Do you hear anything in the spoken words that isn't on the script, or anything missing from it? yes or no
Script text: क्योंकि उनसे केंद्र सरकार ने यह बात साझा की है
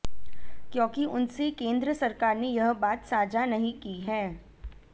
yes